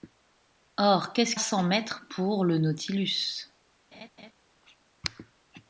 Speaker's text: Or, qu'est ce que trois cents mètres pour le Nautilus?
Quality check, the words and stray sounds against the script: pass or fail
fail